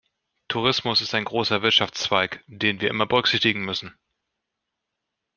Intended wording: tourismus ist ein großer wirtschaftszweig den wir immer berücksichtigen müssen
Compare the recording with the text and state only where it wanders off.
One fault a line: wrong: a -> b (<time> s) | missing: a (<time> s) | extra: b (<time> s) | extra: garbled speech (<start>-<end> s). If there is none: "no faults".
no faults